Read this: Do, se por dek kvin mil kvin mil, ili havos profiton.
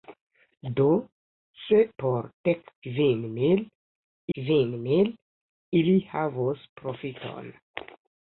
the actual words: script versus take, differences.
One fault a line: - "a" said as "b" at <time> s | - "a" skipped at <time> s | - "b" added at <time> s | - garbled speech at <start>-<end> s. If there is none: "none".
none